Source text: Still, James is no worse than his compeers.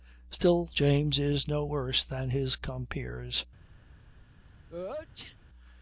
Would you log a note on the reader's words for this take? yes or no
no